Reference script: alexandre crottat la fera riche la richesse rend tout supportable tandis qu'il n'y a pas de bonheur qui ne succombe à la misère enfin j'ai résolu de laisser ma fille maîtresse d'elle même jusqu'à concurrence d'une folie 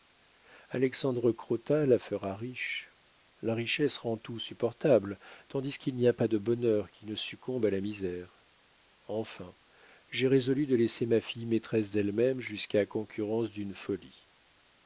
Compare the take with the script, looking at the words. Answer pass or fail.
pass